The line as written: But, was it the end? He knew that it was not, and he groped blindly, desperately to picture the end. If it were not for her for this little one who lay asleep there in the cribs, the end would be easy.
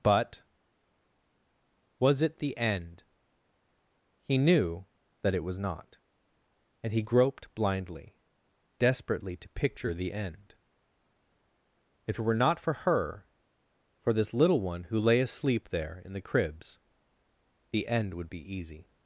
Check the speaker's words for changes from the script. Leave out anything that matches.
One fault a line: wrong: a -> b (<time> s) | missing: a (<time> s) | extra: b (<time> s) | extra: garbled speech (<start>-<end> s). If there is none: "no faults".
no faults